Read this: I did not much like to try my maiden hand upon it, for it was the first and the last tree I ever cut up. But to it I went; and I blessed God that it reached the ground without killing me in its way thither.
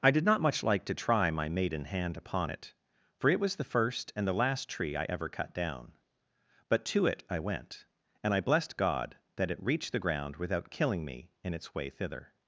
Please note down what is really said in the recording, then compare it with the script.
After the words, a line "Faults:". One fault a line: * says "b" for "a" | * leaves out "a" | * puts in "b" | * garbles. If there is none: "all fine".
I did not much like to try my maiden hand upon it, for it was the first and the last tree I ever cut down. But to it I went; and I blessed God that it reached the ground without killing me in its way thither.
Faults:
* says "down" for "up"